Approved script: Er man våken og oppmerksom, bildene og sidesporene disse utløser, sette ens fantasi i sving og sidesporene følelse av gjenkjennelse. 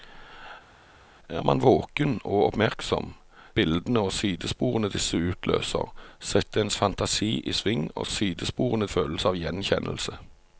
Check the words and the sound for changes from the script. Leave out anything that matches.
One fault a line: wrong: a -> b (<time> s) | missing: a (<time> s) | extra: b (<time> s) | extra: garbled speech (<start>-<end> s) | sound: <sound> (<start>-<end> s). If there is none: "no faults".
no faults